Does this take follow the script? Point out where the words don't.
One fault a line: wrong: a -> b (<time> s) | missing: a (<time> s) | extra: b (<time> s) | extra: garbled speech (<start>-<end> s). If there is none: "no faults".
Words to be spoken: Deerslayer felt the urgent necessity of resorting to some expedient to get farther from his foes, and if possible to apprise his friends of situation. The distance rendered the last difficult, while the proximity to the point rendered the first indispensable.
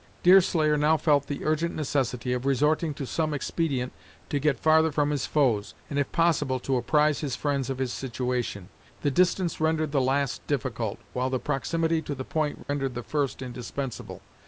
extra: now (0.8 s)
extra: his (7.8 s)